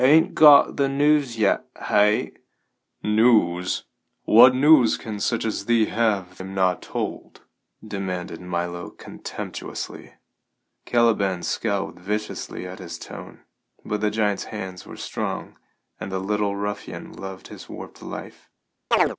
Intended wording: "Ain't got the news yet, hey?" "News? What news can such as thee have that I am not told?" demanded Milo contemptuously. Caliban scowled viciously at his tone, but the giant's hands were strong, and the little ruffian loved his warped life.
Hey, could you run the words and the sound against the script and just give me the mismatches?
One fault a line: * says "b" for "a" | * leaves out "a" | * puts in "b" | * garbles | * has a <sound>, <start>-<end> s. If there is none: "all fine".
* leaves out "that I"
* has a chirp, 18.9-19.2 s